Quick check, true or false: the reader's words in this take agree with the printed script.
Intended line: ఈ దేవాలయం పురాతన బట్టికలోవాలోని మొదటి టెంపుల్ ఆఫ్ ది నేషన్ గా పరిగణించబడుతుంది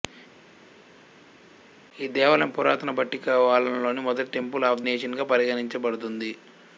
false